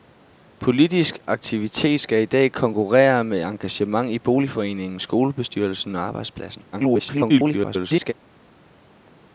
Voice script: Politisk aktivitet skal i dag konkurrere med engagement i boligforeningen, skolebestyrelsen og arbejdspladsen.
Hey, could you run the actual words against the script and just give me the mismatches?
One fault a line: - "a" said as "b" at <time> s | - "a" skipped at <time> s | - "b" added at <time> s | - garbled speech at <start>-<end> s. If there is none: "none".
- garbled speech at 6.7-8.1 s